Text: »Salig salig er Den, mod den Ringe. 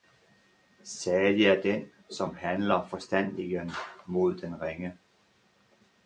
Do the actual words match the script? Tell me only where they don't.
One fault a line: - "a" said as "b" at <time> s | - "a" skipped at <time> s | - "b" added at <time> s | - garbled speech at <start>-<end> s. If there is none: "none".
- "salig" skipped at 1.4 s
- "som handler forstandigen" added at 2.1 s